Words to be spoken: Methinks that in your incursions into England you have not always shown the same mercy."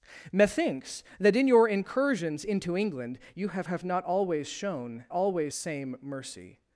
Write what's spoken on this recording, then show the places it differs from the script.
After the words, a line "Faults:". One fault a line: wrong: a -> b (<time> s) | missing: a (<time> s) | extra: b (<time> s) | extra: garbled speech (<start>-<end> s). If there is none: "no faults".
Methinks that in your incursions into England you have have not always shown always same mercy."
Faults:
extra: have (3.6 s)
wrong: the -> always (5.1 s)